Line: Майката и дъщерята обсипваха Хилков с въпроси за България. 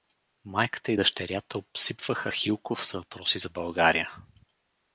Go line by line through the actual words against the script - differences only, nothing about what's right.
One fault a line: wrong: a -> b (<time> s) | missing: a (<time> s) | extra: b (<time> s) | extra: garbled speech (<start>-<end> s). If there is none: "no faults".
no faults